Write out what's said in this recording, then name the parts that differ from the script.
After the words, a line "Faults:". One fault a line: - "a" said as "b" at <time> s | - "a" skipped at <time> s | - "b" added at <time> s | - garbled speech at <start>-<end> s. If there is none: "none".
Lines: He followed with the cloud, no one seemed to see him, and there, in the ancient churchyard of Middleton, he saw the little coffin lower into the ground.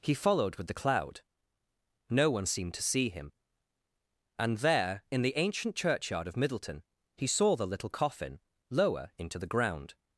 He followed with the cloud, no one seemed to see him, and there, in the ancient churchyard of Middleton, he saw the little coffin lower into the ground.
Faults:
none